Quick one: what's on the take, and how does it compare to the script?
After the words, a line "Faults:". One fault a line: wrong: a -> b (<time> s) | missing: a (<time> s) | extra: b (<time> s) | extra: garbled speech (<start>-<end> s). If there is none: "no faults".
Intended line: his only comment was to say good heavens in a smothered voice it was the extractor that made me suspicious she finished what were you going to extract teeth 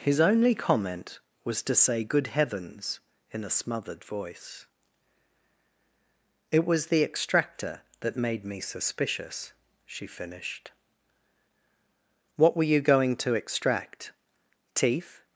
his only comment was to say good heavens in a smothered voice it was the extractor that made me suspicious she finished what were you going to extract teeth
Faults:
no faults